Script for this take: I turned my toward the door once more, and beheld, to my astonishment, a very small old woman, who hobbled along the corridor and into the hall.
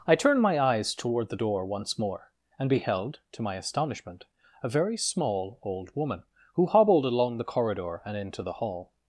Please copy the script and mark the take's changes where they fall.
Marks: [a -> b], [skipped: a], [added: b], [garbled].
I turned my [added: eyes] toward the door once more, and beheld, to my astonishment, a very small old woman, who hobbled along the corridor and into the hall.